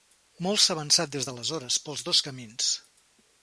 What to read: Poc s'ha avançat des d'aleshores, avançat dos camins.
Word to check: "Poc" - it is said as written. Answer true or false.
false